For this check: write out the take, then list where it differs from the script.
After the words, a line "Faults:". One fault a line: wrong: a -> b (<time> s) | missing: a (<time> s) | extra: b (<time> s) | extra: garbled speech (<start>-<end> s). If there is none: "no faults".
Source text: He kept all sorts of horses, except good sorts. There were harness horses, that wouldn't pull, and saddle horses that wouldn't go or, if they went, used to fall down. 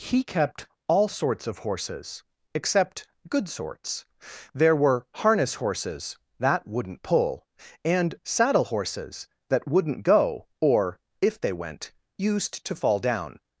He kept all sorts of horses, except good sorts. There were harness horses, that wouldn't pull, and saddle horses that wouldn't go or, if they went, used to fall down.
Faults:
no faults